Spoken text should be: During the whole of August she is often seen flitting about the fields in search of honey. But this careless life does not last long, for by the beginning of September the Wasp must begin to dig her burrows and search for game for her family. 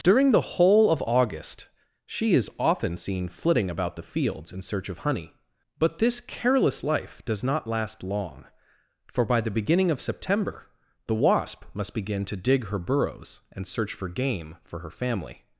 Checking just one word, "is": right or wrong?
right